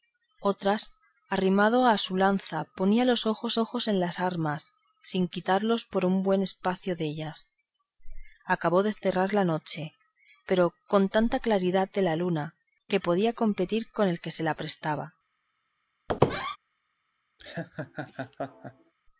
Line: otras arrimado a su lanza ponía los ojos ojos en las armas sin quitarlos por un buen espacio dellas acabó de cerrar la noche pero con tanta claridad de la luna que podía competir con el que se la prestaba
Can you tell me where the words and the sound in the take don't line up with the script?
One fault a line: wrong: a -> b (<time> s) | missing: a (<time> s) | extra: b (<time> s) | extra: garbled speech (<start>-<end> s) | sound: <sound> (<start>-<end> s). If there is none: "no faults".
sound: squeak (16.1-16.6 s)
sound: laugh (17.4-18.9 s)